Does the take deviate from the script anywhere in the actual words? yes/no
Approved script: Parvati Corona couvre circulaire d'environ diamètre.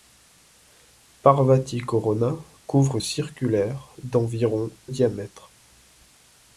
no